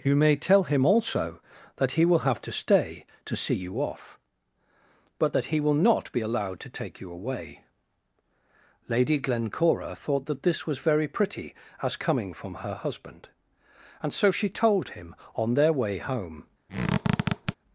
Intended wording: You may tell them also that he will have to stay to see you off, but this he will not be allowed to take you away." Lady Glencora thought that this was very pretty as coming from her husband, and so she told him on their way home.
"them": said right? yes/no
no